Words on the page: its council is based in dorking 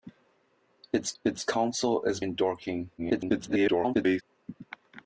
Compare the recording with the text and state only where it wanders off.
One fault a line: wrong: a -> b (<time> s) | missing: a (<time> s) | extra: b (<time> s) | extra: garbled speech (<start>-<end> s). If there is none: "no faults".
extra: its (1.2 s)
missing: based (2.2 s)
extra: garbled speech (3.0-4.2 s)